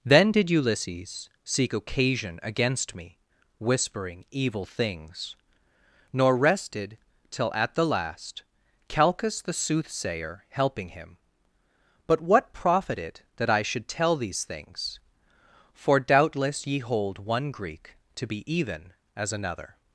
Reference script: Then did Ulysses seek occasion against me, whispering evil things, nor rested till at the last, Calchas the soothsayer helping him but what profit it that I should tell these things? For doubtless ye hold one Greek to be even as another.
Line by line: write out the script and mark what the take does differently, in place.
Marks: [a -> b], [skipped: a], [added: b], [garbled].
Then did Ulysses seek occasion against me, whispering evil things, nor rested till at the last, Calchas the soothsayer helping him but what profit it that I should tell these things? For doubtless ye hold one Greek to be even as another.